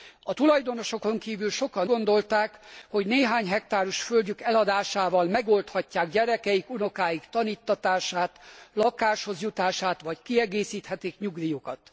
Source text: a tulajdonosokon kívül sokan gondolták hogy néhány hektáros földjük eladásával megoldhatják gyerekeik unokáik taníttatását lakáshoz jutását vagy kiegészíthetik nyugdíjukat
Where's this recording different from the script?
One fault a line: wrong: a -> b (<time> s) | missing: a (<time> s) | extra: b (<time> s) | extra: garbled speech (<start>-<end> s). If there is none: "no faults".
no faults